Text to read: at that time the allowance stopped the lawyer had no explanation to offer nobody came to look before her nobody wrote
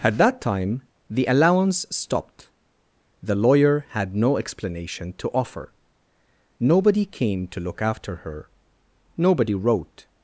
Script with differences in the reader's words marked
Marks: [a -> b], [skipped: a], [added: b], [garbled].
at that time the allowance stopped the lawyer had no explanation to offer nobody came to look [before -> after] her nobody wrote